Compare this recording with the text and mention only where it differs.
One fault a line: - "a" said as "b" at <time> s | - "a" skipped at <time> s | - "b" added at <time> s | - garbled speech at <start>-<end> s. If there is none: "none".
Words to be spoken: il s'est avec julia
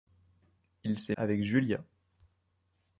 none